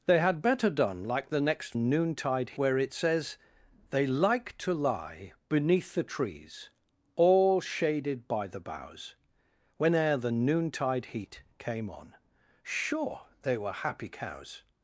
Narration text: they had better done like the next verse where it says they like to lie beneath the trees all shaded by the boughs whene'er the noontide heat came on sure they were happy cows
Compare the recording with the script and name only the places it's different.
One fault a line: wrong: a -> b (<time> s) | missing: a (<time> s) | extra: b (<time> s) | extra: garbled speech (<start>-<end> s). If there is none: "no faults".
wrong: verse -> noontide (1.8 s)